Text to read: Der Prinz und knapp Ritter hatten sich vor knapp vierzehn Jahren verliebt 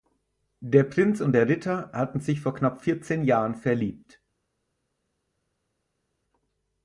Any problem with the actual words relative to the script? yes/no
yes